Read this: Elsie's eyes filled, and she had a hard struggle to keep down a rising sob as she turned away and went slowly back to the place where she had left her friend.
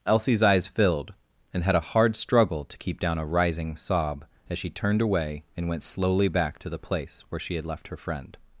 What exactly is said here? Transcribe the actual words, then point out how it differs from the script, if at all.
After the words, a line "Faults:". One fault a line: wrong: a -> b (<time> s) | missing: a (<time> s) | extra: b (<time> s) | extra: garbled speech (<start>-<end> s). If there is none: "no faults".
Elsie's eyes filled, and had a hard struggle to keep down a rising sob as she turned away and went slowly back to the place where she had left her friend.
Faults:
missing: she (1.6 s)